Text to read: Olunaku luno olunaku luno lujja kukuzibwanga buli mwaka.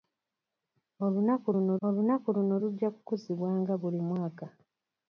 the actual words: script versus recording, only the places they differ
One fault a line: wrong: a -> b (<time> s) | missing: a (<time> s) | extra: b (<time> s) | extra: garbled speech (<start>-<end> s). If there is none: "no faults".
no faults